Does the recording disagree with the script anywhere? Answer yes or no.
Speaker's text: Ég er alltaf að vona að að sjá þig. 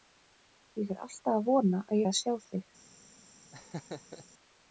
no